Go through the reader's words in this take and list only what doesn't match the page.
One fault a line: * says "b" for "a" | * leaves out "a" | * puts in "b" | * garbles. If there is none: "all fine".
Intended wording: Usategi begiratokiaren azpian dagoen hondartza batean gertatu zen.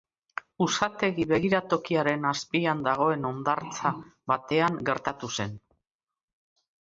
all fine